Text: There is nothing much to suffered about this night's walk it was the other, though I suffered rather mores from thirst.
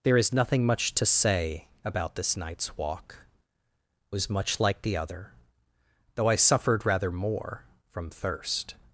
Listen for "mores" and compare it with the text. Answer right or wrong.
wrong